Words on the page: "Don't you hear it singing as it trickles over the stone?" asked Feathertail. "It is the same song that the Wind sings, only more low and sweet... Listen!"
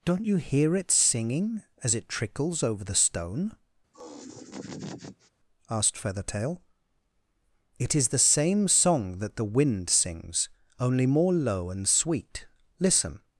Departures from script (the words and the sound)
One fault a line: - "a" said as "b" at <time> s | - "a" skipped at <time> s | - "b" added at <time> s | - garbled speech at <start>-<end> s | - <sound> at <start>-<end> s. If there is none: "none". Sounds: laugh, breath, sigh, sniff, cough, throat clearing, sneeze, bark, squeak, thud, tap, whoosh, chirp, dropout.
- laugh at 3.9-5.3 s